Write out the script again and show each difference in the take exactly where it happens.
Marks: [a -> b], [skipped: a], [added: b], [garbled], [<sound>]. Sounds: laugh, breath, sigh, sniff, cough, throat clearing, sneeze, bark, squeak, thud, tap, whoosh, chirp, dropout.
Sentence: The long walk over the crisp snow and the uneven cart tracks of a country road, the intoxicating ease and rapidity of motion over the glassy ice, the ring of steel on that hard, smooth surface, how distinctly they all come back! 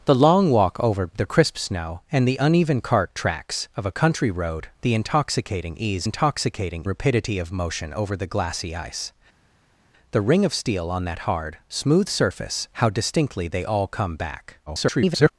The long walk over the crisp snow and the uneven cart tracks of a country road, the intoxicating ease [and -> intoxicating] rapidity of motion over the glassy ice, the ring of steel on that hard, smooth surface, how distinctly they all come back! [garbled]